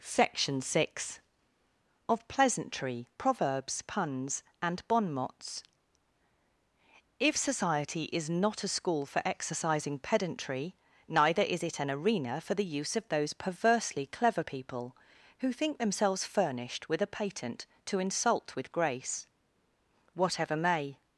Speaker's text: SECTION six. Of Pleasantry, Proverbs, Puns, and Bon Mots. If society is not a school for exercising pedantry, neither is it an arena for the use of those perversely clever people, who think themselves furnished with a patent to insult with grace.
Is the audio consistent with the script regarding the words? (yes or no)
no